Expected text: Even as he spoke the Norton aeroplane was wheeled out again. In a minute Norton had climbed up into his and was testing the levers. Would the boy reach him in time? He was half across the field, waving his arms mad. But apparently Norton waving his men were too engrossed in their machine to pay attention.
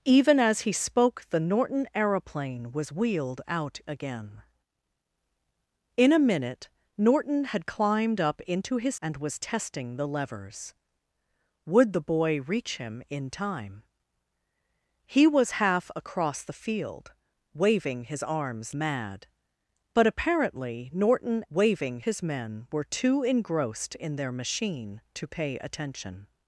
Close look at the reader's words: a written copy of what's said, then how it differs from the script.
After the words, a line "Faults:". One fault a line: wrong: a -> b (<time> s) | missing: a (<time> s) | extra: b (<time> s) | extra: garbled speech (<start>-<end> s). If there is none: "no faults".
Even as he spoke the Norton aeroplane was wheeled out again. In a minute Norton had climbed up into his and was testing the levers. Would the boy reach him in time? He was half across the field, waving his arms mad. But apparently Norton waving his men were too engrossed in their machine to pay attention.
Faults:
no faults